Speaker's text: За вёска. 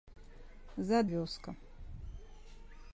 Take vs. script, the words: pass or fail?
pass